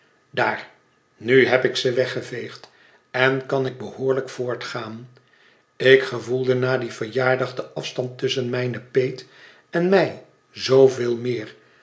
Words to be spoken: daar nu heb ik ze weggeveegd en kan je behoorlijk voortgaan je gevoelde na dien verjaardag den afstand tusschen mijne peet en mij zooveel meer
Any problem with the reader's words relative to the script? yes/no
yes